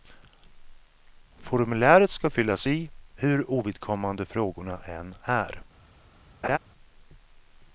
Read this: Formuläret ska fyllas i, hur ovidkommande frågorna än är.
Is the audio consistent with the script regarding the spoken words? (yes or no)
yes